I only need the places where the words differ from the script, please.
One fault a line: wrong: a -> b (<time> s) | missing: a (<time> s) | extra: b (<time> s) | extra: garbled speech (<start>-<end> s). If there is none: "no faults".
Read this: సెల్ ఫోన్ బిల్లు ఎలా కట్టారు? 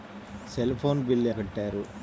missing: ఎలా (1.3 s)